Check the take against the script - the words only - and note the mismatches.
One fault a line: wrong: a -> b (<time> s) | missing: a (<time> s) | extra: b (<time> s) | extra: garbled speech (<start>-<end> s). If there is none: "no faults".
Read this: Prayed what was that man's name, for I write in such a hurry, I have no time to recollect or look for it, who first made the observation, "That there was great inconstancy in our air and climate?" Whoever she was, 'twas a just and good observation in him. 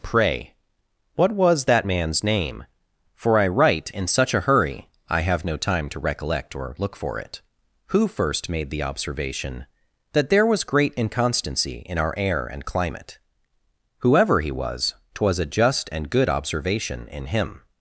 wrong: Prayed -> Pray (0.0 s)
wrong: she -> he (14.4 s)